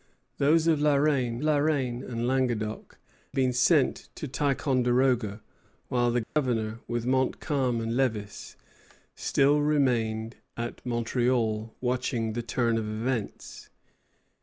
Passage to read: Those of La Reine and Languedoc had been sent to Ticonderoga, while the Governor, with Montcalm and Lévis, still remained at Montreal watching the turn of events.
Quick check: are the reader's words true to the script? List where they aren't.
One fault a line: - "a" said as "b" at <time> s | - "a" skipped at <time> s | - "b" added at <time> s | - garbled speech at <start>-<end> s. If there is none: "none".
- "La Reine" added at 1.4 s
- "had" skipped at 3.0 s